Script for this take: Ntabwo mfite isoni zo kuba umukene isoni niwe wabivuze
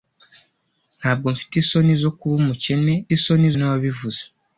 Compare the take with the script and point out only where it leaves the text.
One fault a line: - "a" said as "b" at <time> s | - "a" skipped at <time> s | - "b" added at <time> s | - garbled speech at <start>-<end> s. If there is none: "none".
none